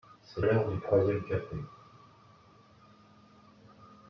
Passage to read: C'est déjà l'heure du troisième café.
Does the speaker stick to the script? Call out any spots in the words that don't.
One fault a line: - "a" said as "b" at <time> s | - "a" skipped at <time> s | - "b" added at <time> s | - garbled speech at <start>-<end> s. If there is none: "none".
- "déjà" skipped at 0.4 s